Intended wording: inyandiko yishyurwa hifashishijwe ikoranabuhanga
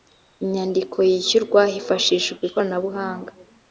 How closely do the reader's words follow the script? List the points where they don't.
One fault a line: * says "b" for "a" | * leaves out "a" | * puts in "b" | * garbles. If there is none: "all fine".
all fine